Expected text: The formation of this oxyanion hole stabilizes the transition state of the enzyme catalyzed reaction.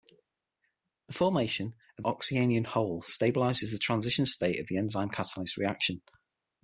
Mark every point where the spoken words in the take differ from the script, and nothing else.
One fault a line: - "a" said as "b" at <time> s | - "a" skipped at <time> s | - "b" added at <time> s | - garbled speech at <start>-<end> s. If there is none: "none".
- "this" skipped at 2.0 s